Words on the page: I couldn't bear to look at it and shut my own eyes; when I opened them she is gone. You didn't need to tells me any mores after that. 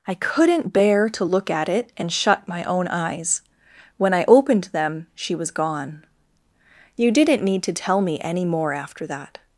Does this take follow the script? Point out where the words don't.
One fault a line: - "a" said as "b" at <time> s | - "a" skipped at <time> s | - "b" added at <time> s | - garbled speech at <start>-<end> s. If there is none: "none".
- "is" said as "was" at 5.3 s
- "tells" said as "tell" at 7.7 s
- "mores" said as "more" at 8.4 s